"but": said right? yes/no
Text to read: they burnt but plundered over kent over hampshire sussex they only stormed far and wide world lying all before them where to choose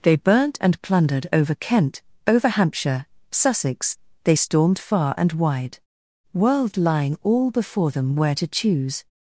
no